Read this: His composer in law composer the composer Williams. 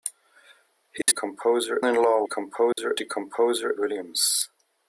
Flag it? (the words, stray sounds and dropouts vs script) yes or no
yes